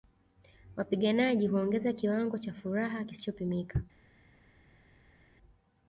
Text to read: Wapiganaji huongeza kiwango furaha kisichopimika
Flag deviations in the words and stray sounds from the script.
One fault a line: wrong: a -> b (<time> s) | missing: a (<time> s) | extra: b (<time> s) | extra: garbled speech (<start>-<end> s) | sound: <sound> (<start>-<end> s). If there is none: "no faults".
extra: cha (2.4 s)